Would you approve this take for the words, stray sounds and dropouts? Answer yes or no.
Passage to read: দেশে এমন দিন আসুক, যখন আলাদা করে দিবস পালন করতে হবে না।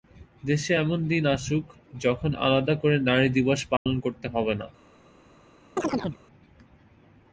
no